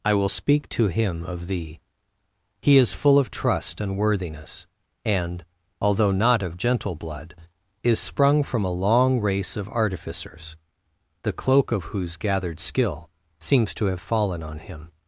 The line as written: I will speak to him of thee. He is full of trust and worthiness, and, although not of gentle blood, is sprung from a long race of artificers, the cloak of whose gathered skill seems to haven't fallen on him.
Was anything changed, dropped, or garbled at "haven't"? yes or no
yes